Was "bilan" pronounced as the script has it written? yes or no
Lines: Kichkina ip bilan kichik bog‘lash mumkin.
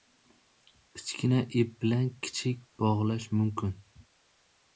yes